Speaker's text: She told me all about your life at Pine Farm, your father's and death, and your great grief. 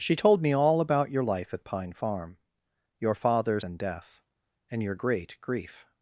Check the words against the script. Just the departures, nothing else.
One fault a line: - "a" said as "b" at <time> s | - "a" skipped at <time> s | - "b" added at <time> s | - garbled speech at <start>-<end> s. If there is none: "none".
none